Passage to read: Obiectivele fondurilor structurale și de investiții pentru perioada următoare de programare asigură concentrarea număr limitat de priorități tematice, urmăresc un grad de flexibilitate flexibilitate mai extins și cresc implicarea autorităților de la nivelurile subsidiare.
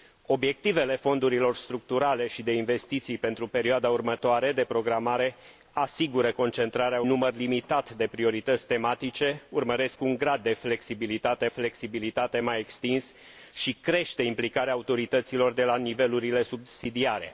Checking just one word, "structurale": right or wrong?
right